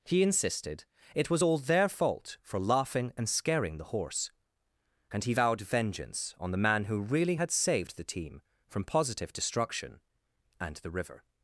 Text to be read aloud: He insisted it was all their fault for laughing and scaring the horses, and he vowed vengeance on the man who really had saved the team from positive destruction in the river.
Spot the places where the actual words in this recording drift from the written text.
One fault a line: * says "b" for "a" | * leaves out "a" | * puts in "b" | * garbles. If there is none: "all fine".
* says "horse" for "horses"
* says "and" for "in"